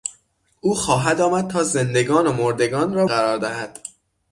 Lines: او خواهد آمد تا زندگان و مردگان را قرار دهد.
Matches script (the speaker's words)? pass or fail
pass